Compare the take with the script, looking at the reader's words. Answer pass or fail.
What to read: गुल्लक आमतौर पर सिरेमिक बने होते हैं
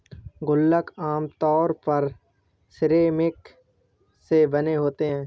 fail